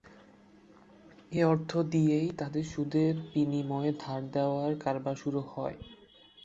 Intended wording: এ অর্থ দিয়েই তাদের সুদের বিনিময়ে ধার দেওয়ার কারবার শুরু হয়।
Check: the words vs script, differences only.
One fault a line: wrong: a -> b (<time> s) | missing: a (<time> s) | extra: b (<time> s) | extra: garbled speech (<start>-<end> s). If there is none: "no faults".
no faults